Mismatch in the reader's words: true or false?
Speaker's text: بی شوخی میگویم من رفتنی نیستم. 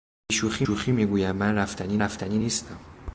true